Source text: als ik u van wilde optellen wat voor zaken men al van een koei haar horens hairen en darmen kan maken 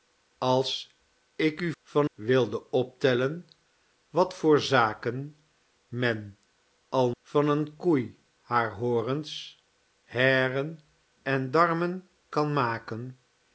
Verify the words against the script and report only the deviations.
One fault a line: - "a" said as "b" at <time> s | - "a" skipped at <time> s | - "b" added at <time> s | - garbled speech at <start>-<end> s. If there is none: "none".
none